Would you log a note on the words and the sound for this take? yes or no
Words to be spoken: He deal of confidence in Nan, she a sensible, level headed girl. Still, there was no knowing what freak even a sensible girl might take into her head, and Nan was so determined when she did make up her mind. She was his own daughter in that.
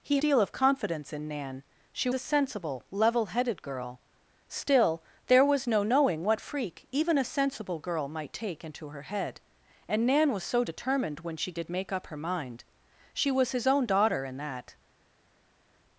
no